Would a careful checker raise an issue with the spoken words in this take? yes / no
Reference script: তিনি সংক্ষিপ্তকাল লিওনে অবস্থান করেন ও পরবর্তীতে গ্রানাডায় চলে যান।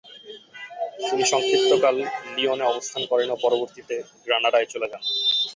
no